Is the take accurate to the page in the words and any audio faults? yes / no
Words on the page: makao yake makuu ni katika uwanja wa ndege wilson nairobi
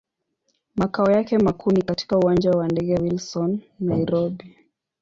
yes